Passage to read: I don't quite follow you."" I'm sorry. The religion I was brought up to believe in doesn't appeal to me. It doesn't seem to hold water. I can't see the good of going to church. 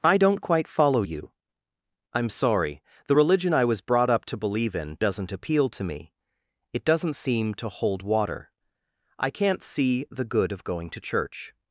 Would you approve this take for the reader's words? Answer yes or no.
yes